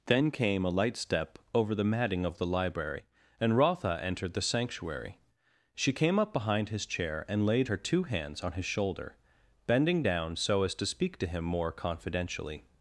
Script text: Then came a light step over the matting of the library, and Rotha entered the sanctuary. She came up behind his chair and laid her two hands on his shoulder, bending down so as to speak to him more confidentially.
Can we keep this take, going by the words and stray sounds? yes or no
yes